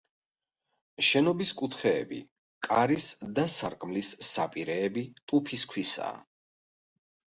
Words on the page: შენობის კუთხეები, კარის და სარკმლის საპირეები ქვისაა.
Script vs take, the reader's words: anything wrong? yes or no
yes